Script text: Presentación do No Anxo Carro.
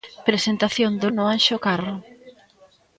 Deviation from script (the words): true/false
false